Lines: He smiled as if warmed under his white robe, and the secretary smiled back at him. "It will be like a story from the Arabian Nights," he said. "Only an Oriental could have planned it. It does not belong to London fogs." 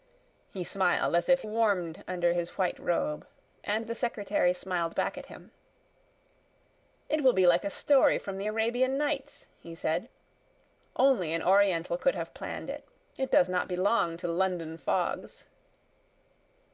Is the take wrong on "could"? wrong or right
right